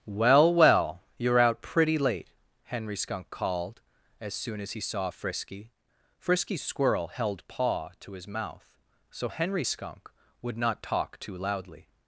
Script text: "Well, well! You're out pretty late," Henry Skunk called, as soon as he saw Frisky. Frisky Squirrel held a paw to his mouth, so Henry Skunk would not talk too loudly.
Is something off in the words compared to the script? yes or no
yes